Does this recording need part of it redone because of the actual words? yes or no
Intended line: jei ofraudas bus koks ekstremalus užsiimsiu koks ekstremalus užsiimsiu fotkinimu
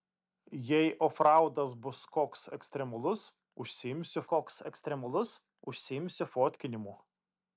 no